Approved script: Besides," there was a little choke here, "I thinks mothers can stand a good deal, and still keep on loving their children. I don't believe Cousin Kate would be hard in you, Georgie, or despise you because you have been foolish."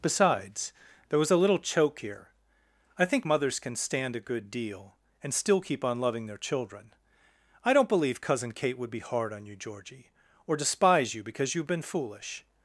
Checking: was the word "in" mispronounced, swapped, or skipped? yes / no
yes